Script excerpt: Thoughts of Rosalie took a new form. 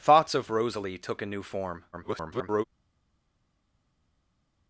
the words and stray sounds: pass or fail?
fail